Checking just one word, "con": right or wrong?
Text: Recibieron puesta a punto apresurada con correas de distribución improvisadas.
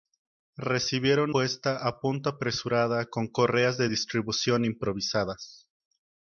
right